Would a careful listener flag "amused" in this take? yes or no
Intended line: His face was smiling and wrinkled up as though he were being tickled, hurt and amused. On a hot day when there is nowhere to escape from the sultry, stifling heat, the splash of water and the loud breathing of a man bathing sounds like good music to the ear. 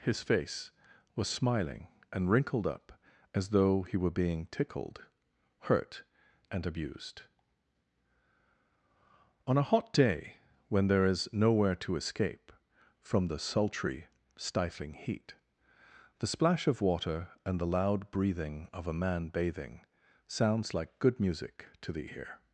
yes